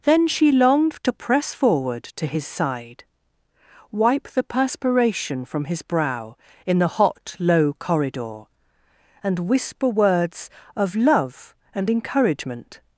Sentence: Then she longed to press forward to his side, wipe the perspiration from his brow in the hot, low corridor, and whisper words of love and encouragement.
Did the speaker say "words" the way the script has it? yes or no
yes